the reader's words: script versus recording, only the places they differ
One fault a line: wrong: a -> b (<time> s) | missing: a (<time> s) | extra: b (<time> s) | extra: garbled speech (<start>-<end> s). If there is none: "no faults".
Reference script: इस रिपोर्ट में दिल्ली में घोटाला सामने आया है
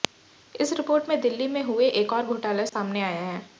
extra: हुए एक और (1.6 s)